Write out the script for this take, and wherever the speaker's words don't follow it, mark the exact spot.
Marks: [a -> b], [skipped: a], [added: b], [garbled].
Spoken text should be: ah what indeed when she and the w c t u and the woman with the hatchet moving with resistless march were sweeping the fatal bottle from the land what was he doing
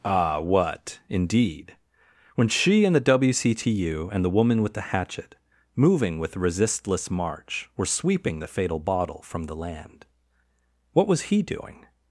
ah what indeed when she and the w c t u and the woman with the hatchet moving with resistless march were sweeping the fatal bottle from the land what was he doing